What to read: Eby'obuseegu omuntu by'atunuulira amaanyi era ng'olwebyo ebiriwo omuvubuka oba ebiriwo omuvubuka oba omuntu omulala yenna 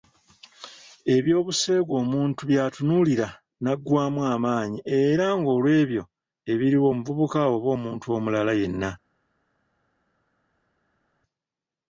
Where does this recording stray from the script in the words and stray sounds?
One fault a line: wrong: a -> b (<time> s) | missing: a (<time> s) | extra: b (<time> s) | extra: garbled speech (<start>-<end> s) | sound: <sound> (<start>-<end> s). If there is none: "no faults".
extra: naggwaamu (3.6 s)
missing: ebiriwo omuvubuka oba (7.7 s)